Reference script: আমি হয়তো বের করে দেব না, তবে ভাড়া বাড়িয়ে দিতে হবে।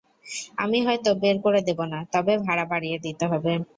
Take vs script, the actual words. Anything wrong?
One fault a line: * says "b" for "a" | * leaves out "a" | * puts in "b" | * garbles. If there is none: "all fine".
all fine